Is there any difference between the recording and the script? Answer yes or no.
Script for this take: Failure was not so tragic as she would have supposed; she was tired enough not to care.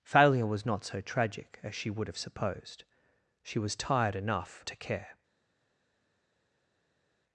yes